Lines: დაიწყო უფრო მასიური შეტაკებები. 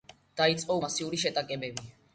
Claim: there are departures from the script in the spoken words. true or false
true